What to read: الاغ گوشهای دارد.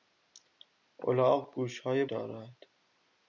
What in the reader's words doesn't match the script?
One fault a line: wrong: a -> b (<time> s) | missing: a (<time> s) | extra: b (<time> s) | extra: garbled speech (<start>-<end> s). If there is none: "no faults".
no faults